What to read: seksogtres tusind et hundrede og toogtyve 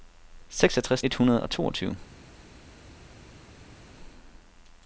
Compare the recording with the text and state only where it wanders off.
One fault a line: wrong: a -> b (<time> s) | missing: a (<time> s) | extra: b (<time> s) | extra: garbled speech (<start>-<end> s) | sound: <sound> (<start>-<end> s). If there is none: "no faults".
missing: tusind (1.0 s)